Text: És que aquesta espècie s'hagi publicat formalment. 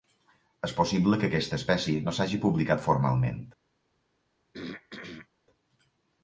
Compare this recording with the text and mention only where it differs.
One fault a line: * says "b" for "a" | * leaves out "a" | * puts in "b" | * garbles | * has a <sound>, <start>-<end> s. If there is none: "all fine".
* puts in "possible"
* puts in "no"
* has a throat clearing, 4.5-5.3 s